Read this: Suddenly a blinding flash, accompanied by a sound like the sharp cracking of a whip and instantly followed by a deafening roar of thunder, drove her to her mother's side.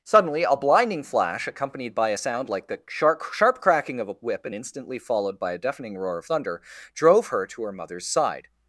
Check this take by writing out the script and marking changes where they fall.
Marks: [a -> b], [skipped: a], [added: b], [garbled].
Suddenly a blinding flash, accompanied by a sound like the sharp [added: sharp] cracking of a whip and instantly followed by a deafening roar of thunder, drove her to her mother's side.